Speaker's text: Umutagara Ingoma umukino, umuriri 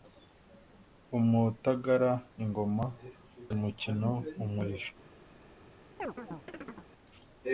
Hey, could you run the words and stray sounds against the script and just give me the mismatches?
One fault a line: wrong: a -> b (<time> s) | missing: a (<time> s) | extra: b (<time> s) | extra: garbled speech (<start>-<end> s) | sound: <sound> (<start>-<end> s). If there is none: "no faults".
sound: chirp (6.0-6.9 s)